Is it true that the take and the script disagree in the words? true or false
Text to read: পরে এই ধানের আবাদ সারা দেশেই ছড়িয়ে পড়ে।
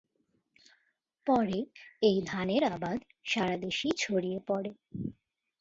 false